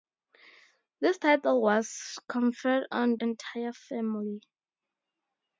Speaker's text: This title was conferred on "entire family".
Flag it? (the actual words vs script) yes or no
no